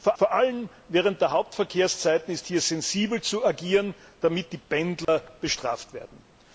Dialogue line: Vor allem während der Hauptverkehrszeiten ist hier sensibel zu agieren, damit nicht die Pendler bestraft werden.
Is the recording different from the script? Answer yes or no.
yes